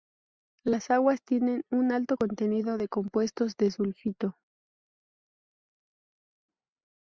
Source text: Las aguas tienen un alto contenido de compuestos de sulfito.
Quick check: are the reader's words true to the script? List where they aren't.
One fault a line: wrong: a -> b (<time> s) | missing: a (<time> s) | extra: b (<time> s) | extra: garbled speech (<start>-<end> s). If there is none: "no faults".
no faults